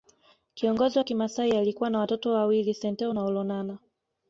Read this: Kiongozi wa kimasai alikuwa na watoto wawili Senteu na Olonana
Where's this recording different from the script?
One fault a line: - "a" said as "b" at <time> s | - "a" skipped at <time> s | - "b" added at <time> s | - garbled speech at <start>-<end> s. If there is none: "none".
none